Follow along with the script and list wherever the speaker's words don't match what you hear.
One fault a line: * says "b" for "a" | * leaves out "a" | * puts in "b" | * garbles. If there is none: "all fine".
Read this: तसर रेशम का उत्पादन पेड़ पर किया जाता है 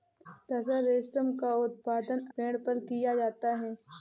all fine